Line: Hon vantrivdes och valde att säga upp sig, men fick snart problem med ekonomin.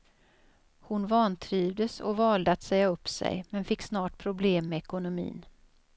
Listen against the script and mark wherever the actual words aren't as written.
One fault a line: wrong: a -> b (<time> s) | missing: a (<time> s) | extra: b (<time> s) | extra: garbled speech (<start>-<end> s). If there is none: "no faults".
no faults